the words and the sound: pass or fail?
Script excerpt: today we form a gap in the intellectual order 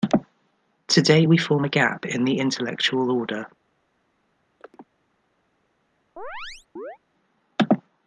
fail